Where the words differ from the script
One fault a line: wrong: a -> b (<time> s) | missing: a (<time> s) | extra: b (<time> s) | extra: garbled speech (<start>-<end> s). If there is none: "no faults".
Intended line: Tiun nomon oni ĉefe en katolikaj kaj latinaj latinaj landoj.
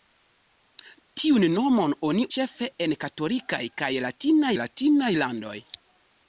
no faults